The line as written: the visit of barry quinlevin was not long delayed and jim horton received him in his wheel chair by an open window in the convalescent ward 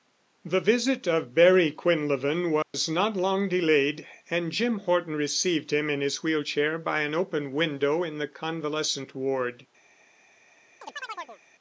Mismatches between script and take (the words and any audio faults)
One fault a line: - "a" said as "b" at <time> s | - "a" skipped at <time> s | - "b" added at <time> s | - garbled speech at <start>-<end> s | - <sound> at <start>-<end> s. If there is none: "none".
- dropout at 2.6-2.7 s
- chirp at 10.8-11.4 s